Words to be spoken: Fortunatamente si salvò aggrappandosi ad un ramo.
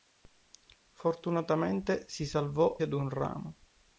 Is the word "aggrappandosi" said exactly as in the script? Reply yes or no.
no